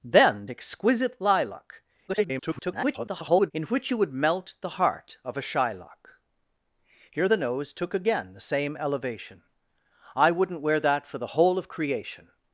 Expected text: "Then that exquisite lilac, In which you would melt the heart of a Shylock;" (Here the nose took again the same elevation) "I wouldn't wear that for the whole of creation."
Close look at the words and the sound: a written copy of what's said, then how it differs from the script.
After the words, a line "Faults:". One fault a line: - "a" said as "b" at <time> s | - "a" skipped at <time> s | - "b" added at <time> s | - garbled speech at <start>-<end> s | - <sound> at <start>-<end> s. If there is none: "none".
"Then exquisite lilac, [garbled] In which you would melt the heart of a Shylock;" (Here the nose took again the same elevation) "I wouldn't wear that for the whole of creation."
Faults:
- "that" skipped at 0.5 s
- garbled speech at 2.1-3.5 s